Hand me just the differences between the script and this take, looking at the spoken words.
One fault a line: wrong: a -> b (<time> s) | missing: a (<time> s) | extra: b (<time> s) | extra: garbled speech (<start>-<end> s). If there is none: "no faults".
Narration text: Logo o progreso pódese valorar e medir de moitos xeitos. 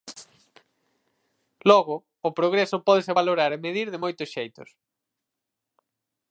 no faults